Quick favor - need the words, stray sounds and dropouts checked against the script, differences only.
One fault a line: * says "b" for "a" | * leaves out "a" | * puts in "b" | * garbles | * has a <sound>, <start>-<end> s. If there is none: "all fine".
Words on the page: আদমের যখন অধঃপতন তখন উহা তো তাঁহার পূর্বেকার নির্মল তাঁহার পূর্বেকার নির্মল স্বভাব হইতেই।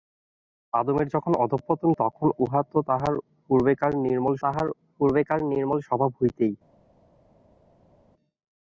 all fine